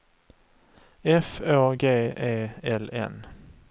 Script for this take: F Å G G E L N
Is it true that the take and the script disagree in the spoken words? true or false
true